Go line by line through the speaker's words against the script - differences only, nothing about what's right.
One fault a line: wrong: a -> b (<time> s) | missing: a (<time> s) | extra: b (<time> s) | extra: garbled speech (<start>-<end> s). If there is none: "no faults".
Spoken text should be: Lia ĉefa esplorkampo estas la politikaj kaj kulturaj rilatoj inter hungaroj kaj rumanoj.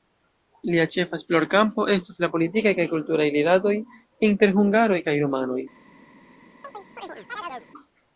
no faults